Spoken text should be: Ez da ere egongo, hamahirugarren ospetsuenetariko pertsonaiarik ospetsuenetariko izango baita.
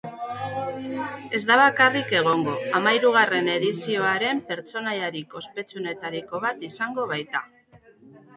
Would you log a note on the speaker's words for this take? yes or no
yes